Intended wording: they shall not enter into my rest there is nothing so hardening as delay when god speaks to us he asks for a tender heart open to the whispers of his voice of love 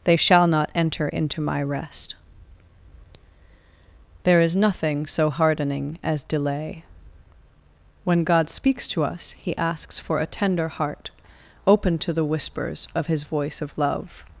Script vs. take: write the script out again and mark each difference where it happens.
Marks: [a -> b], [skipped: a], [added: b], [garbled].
they shall not enter into my rest there is nothing so hardening as delay when god speaks to us he asks for a tender heart open to the whispers of his voice of love